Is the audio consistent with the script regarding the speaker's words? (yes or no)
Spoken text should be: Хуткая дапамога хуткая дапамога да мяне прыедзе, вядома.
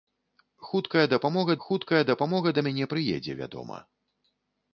yes